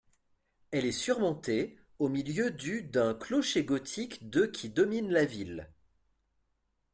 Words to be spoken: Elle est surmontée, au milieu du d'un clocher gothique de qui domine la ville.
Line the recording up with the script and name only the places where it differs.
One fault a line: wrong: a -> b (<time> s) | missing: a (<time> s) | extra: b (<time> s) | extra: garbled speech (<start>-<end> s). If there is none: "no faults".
no faults